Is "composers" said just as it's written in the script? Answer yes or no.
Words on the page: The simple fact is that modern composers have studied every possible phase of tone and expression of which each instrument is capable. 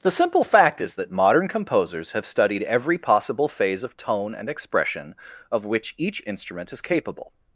yes